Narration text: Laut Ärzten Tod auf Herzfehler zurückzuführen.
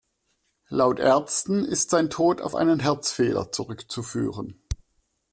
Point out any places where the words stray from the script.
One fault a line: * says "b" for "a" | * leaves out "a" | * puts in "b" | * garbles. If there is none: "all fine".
* puts in "ist sein"
* puts in "einen"